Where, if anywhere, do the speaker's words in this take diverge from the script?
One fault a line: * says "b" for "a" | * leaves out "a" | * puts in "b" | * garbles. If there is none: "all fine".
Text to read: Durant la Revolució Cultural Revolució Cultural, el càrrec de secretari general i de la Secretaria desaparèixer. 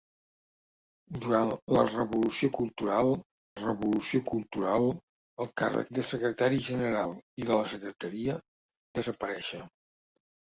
all fine